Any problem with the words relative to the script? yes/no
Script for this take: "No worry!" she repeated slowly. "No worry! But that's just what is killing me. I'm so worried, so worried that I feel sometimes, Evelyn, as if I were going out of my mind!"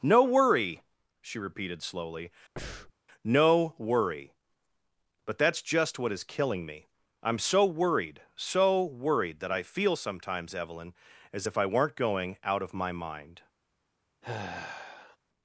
yes